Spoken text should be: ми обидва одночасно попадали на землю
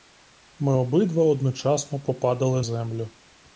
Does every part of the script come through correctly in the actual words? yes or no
no